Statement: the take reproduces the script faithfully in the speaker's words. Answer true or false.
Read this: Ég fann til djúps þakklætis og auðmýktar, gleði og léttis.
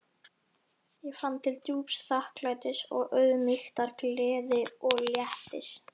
true